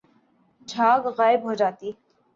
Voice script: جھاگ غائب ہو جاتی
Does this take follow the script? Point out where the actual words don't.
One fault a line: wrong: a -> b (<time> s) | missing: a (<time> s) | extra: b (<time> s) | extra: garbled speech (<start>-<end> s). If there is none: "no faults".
no faults